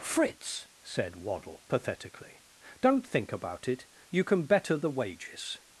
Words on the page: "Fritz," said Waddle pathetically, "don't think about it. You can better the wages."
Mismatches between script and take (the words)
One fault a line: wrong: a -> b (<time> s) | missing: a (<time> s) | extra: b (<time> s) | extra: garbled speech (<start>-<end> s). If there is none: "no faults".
no faults